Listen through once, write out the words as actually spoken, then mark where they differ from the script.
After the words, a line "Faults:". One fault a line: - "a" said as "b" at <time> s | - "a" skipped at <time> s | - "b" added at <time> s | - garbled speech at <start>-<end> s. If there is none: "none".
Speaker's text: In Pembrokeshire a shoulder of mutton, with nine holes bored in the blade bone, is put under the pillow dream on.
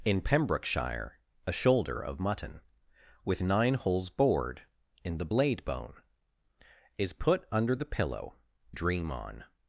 In Pembrokeshire a shoulder of mutton, with nine holes bored in the blade bone, is put under the pillow dream on.
Faults:
none